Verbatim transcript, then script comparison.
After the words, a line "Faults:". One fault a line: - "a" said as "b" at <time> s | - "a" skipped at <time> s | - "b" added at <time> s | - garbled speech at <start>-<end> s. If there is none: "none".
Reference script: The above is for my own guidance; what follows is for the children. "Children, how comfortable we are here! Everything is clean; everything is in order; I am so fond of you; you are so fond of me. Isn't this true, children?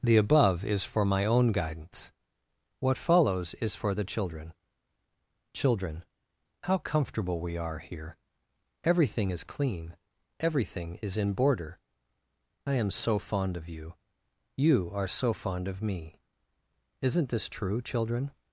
The above is for my own guidance; what follows is for the children. "Children, how comfortable we are here! Everything is clean; everything is in border; I am so fond of you; you are so fond of me. Isn't this true, children?
Faults:
- "order" said as "border" at 11.3 s